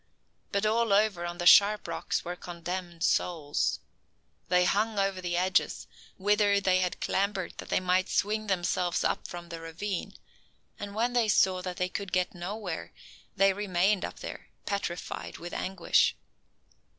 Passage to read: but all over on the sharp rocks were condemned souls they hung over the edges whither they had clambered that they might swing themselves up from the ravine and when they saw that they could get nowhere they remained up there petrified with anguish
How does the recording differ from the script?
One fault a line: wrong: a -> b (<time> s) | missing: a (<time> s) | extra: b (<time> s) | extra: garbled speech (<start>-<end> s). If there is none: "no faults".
no faults